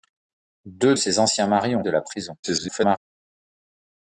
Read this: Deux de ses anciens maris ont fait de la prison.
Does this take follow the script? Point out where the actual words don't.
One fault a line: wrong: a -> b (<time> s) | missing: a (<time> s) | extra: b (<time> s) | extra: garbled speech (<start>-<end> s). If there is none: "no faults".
missing: de (0.9 s)
missing: fait (1.8 s)
extra: garbled speech (2.4-3.0 s)